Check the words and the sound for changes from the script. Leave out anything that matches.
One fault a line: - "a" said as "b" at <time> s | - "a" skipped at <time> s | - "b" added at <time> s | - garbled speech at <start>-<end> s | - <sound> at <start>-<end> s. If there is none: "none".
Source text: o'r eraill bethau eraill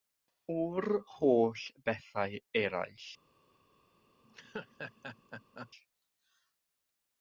- "eraill" said as "holl" at 1.1 s
- laugh at 4.2-5.7 s